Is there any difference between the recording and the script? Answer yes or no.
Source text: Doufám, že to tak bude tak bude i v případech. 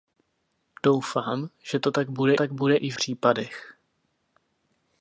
no